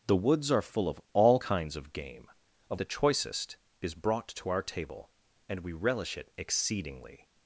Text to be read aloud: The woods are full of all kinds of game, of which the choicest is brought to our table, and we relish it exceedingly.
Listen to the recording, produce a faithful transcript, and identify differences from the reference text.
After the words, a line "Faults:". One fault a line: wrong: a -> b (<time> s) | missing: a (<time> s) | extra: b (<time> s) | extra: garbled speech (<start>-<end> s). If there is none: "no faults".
The woods are full of all kinds of game, of the choicest is brought to our table, and we relish it exceedingly.
Faults:
missing: which (2.8 s)